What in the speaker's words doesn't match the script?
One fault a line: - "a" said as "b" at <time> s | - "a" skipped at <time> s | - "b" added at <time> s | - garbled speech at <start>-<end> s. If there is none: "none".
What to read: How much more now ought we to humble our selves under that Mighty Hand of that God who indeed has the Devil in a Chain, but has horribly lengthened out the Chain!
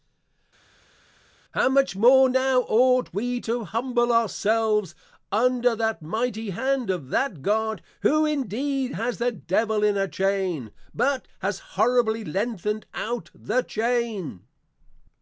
none